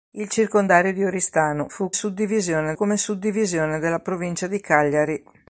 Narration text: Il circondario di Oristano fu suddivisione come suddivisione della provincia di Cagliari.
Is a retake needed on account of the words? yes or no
no